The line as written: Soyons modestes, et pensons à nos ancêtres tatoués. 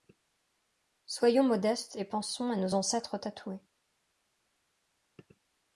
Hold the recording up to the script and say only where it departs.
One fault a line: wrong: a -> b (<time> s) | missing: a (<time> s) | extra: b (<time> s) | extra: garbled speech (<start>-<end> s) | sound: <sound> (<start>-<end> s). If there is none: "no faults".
no faults